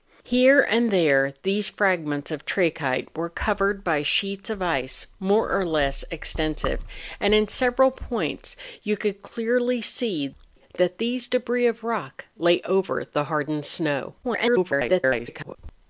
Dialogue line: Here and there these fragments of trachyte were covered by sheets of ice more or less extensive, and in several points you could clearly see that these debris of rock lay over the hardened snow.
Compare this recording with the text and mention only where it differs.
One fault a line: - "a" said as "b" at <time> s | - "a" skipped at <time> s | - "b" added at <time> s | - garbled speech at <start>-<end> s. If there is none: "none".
- garbled speech at 14.2-15.6 s